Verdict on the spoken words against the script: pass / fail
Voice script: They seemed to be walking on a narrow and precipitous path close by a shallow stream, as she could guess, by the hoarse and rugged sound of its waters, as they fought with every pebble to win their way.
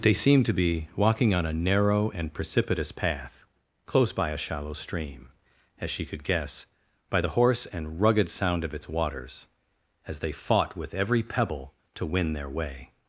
pass